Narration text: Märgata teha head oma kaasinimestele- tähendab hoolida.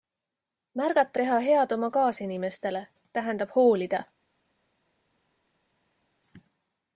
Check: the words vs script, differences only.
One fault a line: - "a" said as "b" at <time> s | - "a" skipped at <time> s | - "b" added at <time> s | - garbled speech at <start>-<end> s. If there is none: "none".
none